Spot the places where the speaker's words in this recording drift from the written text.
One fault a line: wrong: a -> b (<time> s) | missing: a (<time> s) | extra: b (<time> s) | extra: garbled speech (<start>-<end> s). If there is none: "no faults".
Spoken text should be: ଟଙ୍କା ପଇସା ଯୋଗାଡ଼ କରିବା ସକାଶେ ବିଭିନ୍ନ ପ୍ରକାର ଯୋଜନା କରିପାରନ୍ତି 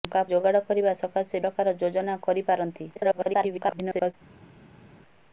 missing: ପଇସା (0.2 s)
missing: ବିଭିନ୍ନ (1.4 s)
extra: garbled speech (3.0-4.1 s)